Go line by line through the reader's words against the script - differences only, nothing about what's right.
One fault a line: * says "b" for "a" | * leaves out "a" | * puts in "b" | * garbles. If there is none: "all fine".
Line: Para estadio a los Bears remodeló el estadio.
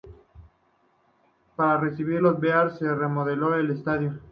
* says "recibir" for "estadio"
* puts in "se"